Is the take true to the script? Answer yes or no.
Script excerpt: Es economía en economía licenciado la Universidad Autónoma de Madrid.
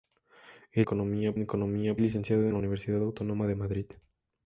yes